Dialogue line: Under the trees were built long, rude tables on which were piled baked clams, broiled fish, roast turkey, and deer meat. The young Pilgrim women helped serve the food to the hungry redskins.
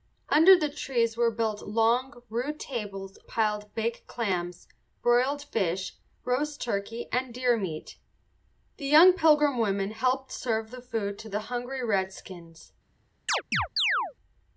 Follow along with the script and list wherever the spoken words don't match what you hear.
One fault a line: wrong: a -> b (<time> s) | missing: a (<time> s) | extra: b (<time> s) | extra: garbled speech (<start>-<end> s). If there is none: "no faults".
missing: on which were (3.2 s)